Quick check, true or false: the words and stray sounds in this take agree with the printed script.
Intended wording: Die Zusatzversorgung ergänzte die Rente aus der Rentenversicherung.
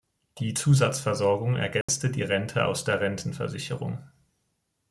false